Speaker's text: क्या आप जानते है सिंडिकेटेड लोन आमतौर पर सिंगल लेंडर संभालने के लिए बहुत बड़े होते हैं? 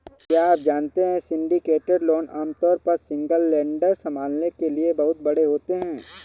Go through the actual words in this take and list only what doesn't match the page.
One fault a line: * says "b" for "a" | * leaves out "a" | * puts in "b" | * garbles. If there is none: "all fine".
all fine